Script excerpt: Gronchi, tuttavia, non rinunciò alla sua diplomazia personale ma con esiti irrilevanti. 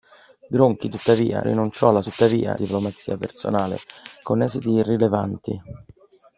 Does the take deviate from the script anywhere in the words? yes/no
yes